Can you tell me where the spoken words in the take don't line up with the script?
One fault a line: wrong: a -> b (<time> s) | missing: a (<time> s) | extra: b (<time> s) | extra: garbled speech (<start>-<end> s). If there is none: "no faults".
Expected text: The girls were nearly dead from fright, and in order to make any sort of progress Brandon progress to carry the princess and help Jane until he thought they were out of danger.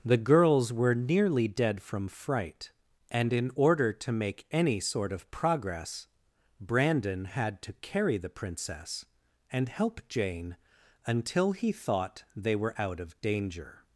wrong: progress -> had (7.2 s)